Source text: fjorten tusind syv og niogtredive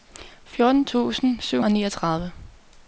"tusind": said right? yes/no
yes